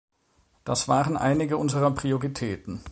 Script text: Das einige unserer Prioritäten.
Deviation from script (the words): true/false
true